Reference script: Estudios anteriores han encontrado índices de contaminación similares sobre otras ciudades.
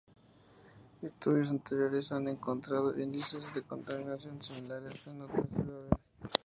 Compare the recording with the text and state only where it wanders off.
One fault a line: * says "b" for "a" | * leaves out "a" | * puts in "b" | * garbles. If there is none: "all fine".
* says "en" for "sobre"